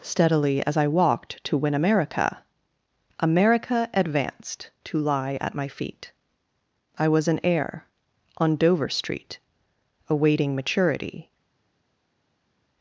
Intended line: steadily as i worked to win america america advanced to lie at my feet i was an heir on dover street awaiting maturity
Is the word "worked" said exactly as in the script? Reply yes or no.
no